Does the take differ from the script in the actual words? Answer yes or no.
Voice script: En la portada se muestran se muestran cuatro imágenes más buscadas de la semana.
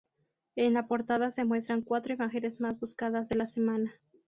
yes